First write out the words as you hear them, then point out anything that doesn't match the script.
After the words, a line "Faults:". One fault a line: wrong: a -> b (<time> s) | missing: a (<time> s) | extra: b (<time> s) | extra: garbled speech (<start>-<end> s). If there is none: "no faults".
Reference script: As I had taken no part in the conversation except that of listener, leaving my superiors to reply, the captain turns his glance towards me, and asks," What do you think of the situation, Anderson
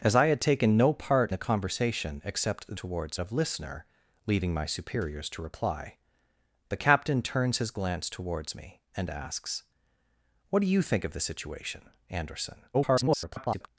As I had taken no part the conversation except towards of listener, leaving my superiors to reply, the captain turns his glance towards me, and asks," What do you think of the situation, Anderson [garbled]
Faults:
missing: in (1.3 s)
wrong: that -> towards (2.7 s)
extra: garbled speech (12.7-13.7 s)